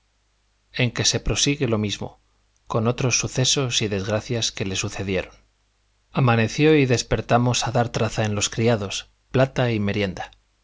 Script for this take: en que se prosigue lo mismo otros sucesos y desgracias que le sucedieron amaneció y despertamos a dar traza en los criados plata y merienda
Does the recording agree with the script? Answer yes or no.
no